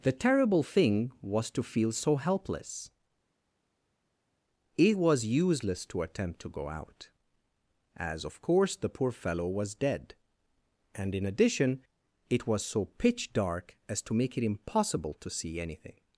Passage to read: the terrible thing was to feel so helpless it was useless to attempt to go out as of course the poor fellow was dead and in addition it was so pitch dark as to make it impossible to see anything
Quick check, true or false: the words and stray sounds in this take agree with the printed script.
true